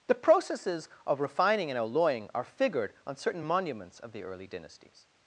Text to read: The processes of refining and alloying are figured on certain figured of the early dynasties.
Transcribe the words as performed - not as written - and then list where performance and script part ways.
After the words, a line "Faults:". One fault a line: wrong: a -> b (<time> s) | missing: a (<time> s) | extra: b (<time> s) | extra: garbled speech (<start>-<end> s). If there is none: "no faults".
The processes of refining and alloying are figured on certain monuments of the early dynasties.
Faults:
wrong: figured -> monuments (3.4 s)